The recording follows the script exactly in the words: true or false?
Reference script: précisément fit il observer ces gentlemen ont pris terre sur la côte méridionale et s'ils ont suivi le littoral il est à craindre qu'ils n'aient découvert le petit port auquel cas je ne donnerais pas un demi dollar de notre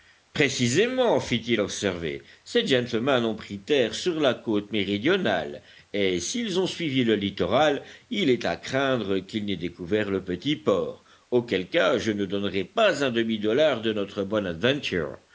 true